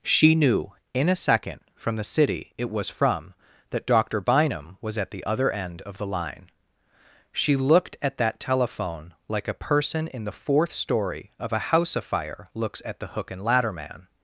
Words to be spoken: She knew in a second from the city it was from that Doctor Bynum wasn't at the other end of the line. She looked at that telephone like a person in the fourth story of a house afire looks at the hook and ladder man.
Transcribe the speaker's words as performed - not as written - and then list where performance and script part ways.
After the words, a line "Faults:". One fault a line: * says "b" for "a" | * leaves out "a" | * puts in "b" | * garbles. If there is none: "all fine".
She knew in a second from the city it was from that Doctor Bynum was at the other end of the line. She looked at that telephone like a person in the fourth story of a house afire looks at the hook and ladder man.
Faults:
* says "was" for "wasn't"